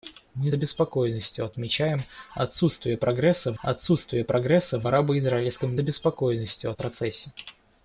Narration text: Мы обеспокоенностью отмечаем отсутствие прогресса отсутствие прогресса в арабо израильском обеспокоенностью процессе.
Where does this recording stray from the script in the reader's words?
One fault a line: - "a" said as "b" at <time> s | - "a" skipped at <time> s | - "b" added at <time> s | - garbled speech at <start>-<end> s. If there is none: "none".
none